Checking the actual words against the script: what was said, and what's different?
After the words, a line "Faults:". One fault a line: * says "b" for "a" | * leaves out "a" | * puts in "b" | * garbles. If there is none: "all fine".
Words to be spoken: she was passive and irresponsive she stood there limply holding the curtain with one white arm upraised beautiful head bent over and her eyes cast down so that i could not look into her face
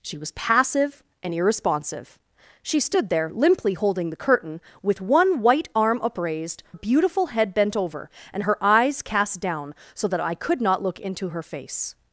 she was passive and irresponsive she stood there limply holding the curtain with one white arm upraised beautiful head bent over and her eyes cast down so that i could not look into her face
Faults:
all fine